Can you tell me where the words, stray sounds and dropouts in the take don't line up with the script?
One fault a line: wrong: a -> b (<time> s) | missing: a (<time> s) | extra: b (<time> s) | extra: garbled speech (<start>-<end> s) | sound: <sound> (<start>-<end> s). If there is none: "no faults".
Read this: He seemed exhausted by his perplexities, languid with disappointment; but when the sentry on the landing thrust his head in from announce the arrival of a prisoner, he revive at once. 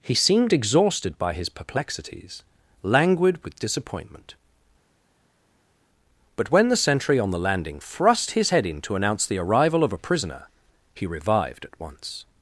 wrong: from -> to (8.8 s)
wrong: revive -> revived (11.0 s)